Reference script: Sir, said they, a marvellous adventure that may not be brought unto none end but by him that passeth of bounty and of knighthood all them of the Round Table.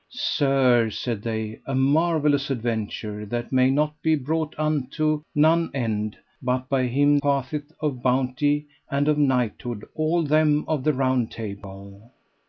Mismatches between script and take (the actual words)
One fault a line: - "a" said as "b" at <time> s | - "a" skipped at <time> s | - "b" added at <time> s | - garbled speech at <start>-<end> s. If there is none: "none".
- "that" skipped at 7.2 s